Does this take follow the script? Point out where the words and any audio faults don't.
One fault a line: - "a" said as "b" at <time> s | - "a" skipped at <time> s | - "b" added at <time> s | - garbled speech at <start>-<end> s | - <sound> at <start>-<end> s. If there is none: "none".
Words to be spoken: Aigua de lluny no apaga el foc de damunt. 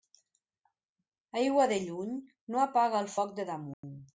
- dropout at 3.7-3.8 s